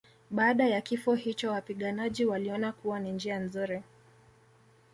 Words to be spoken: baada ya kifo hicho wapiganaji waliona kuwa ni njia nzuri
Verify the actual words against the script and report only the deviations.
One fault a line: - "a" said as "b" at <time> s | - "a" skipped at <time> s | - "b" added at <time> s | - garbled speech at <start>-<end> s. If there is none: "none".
none